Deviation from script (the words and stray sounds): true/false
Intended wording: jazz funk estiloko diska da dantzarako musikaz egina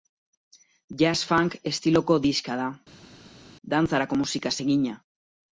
false